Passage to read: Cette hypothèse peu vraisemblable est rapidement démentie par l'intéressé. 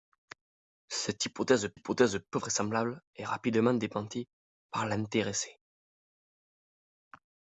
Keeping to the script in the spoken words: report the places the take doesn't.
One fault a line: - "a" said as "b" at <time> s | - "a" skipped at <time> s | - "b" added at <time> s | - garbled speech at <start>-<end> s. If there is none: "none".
- "hypothèse" added at 1.7 s